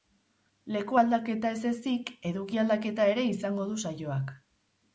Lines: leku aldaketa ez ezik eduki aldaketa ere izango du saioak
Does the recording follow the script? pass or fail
pass